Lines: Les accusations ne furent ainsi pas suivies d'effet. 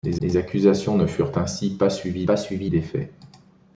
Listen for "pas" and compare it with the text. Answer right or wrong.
right